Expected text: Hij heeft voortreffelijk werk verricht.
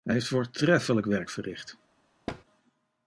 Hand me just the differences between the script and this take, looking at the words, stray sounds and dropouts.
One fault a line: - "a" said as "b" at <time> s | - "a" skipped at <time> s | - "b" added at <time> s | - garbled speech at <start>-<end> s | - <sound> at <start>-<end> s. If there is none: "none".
- thud at 2.3-2.4 s